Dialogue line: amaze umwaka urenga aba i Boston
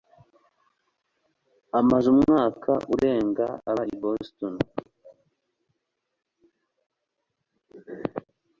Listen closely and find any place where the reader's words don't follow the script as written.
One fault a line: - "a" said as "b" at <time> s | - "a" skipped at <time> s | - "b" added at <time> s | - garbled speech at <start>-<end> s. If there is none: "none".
none